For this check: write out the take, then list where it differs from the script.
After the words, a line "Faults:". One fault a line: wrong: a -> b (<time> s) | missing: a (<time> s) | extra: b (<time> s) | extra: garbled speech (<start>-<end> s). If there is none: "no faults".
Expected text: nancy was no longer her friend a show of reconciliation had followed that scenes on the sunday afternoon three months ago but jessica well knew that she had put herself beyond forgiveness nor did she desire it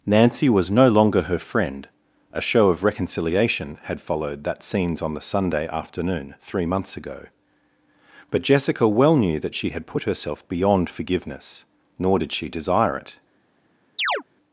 nancy was no longer her friend a show of reconciliation had followed that scenes on the sunday afternoon three months ago but jessica well knew that she had put herself beyond forgiveness nor did she desire it
Faults:
no faults